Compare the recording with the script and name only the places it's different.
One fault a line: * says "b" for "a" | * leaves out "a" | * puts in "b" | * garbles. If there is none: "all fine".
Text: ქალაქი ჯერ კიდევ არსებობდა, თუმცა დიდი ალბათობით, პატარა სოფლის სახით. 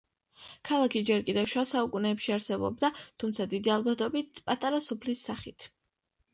* puts in "შუა საუკუნეებში"